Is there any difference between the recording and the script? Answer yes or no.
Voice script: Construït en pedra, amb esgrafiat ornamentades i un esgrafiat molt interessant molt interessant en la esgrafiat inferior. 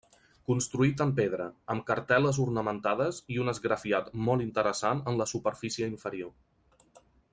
yes